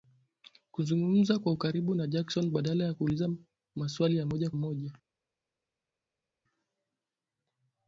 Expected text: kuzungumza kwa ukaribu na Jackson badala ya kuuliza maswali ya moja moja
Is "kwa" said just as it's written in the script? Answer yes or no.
yes